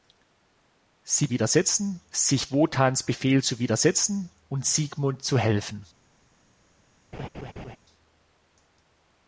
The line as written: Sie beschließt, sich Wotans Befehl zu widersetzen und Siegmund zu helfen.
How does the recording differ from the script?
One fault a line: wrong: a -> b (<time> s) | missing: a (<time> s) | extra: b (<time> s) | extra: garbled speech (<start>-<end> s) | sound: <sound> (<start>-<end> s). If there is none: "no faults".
wrong: beschließt -> widersetzen (1.3 s)
sound: laugh (7.1-7.8 s)